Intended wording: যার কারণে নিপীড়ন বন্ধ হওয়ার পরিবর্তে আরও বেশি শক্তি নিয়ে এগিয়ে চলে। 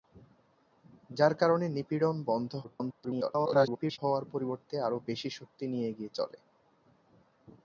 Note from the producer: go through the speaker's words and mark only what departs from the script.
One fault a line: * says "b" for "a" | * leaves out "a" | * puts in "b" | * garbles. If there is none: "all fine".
* garbles